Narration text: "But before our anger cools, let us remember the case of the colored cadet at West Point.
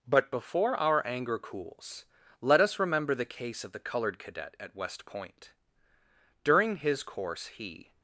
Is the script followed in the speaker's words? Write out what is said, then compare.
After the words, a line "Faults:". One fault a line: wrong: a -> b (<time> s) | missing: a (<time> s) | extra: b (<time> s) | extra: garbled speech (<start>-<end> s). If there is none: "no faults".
"But before our anger cools, let us remember the case of the colored cadet at West Point. During his course he
Faults:
extra: During his course he (6.4 s)